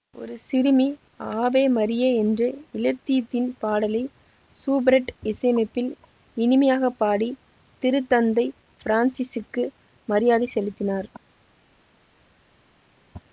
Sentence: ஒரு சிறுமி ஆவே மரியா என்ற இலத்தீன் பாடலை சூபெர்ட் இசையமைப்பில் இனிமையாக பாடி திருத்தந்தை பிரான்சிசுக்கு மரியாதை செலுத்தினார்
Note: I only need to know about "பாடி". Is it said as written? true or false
true